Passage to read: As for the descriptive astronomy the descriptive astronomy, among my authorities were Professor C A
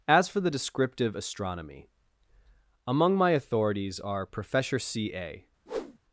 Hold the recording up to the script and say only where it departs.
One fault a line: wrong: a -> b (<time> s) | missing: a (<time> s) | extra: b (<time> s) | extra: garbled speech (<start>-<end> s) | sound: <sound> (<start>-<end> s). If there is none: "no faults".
missing: the descriptive astronomy (1.9 s)
wrong: were -> are (4.0 s)
sound: whoosh (5.7-6.0 s)